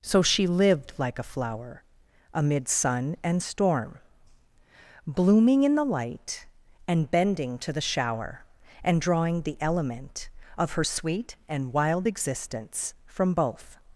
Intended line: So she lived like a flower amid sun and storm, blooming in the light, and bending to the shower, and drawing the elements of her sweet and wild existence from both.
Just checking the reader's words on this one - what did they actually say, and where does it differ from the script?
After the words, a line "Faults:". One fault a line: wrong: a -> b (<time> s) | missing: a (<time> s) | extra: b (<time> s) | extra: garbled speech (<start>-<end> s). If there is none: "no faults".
So she lived like a flower amid sun and storm, blooming in the light, and bending to the shower, and drawing the element of her sweet and wild existence from both.
Faults:
wrong: elements -> element (9.6 s)